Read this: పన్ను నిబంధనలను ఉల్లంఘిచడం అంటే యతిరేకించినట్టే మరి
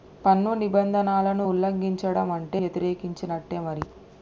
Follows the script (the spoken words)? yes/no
yes